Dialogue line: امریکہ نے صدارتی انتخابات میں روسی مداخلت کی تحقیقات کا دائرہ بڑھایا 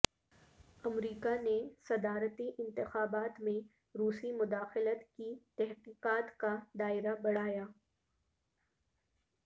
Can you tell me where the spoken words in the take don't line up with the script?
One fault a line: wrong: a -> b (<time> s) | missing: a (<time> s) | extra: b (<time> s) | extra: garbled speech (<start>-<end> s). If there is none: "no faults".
no faults